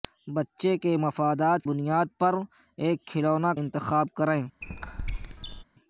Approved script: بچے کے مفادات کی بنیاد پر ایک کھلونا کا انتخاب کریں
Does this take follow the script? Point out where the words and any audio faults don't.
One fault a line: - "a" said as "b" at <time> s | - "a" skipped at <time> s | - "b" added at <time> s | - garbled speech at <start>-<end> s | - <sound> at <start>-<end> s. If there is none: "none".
- "کی" skipped at 1.6 s
- "کا" skipped at 3.5 s
- squeak at 4.6-5.6 s